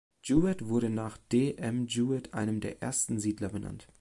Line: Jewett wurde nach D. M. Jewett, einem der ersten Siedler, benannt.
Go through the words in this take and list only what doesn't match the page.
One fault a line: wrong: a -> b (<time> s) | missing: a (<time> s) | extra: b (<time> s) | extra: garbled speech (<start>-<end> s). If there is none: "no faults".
no faults